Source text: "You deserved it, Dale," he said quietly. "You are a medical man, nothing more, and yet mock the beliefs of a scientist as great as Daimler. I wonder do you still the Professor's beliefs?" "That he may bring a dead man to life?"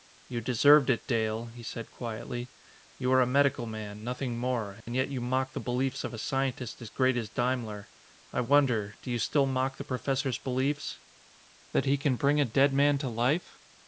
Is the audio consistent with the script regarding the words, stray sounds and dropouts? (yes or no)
no